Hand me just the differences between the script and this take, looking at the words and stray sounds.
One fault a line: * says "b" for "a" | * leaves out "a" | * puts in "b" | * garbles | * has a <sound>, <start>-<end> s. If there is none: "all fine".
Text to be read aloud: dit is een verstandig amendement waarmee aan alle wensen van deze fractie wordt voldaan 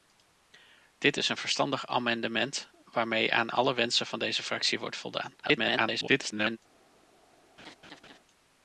* garbles
* has a laugh, 7.6-8.2 s